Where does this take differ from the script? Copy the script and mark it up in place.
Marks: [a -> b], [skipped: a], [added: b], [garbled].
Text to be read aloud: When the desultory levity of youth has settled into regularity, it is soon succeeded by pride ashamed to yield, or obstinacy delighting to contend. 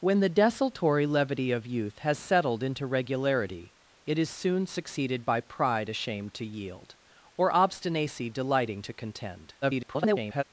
When the desultory levity of youth has settled into regularity, it is soon succeeded by pride ashamed to yield, or obstinacy delighting to contend. [garbled]